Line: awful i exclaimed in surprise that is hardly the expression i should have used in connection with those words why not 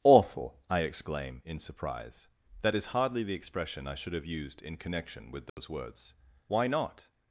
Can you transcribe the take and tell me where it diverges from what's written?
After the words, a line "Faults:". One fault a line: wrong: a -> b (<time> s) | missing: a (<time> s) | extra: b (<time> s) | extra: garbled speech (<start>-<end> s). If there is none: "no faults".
awful i exclaim in surprise that is hardly the expression i should have used in connection with those words why not
Faults:
wrong: exclaimed -> exclaim (0.8 s)